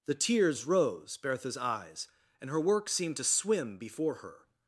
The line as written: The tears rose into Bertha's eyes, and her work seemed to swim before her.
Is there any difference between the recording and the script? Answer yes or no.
yes